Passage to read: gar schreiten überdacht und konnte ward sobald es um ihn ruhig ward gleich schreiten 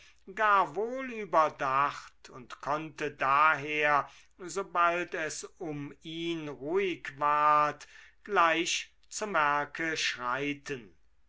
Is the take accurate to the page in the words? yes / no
no